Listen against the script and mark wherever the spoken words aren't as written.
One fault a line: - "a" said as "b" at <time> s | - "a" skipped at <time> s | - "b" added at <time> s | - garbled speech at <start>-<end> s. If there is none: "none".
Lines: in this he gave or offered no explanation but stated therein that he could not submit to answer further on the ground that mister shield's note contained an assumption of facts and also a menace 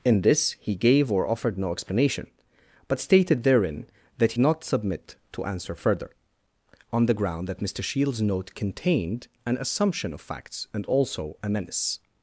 - "he could" skipped at 4.3 s